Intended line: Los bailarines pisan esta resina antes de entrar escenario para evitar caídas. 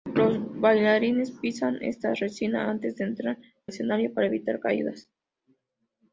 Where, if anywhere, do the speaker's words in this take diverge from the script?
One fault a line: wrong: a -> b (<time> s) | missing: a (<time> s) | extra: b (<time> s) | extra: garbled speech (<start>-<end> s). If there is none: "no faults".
no faults